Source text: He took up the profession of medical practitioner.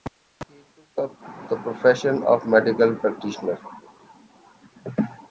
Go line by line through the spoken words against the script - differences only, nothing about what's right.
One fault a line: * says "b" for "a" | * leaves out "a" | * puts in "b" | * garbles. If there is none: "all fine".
all fine